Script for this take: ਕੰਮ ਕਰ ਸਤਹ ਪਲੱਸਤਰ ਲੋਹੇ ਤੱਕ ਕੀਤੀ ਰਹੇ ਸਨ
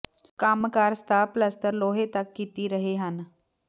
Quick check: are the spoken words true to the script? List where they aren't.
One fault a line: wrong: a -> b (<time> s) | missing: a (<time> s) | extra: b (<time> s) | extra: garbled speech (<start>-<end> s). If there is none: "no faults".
wrong: ਸਨ -> ਹਨ (3.0 s)